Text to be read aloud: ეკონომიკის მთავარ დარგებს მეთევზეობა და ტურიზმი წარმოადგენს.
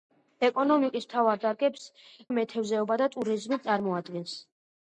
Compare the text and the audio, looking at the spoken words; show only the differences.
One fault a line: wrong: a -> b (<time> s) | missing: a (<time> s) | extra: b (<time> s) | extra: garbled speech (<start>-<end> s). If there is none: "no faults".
no faults